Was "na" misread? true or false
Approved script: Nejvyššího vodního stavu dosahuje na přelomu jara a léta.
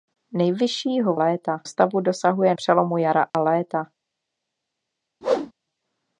true